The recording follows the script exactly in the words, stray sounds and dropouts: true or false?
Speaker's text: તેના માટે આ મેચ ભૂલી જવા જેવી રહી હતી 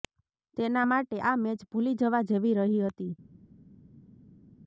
true